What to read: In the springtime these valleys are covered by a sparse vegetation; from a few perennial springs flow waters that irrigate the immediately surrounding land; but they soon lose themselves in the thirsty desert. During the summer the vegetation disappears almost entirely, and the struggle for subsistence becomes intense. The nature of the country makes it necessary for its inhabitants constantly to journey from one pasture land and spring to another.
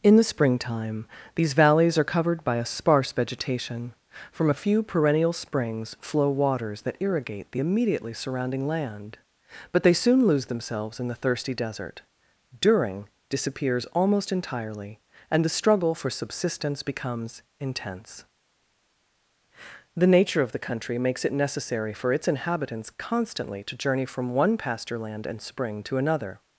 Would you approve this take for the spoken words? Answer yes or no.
no